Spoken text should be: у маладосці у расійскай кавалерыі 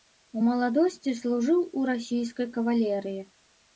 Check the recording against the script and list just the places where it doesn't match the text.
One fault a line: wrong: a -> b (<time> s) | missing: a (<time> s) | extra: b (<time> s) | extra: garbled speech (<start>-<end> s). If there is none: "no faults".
extra: служыў (1.2 s)